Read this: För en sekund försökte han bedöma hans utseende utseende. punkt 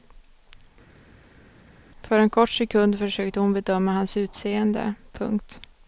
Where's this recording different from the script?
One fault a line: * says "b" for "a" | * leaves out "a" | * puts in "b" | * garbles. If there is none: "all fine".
* puts in "kort"
* says "hon" for "han"
* leaves out "utseende"